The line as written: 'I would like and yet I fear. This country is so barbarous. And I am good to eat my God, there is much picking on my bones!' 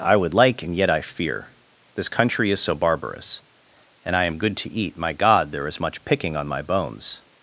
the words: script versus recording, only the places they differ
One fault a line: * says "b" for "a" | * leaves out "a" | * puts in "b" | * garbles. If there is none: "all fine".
all fine